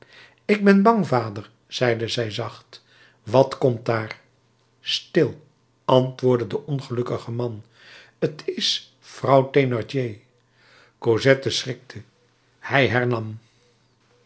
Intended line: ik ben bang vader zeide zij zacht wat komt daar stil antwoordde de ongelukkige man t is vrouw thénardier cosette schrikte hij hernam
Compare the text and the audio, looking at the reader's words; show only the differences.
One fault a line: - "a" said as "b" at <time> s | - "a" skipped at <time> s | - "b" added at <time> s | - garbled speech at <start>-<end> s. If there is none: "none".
none